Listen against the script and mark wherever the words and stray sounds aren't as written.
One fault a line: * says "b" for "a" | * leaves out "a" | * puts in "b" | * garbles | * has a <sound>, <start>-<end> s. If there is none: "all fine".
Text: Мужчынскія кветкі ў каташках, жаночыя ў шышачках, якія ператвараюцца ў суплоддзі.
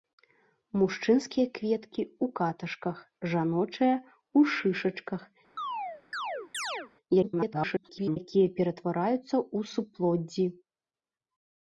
* has a chirp, 5.6-6.9 s
* garbles